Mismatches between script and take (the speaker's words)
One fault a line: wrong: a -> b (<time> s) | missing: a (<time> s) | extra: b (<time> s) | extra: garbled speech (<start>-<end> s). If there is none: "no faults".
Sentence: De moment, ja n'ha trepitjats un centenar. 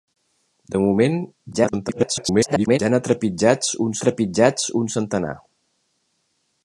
extra: garbled speech (1.5-2.8 s)
extra: trepitjats un (4.1 s)